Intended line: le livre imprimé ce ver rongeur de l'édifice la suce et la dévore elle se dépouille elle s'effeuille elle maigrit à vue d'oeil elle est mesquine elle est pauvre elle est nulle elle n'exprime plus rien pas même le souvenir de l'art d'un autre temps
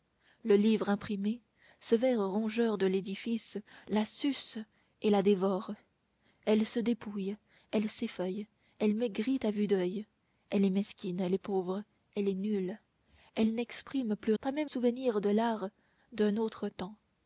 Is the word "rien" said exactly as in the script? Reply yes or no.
no